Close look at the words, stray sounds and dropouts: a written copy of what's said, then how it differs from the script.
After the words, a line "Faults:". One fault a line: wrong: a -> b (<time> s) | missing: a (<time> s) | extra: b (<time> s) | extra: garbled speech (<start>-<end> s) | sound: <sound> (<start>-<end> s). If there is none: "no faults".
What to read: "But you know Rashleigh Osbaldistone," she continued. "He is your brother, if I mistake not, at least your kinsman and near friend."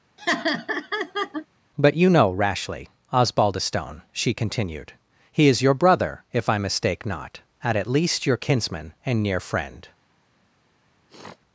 "But you know Rashleigh Osbaldistone," she continued. "He is your brother, if I mistake not, at at least your kinsman and near friend."
Faults:
sound: laugh (0.2-1.5 s)
extra: at (7.8 s)
sound: sniff (11.1-11.4 s)